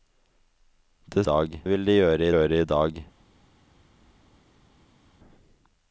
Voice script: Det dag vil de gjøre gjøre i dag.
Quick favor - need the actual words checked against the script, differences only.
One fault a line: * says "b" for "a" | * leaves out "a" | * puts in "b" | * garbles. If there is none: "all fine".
all fine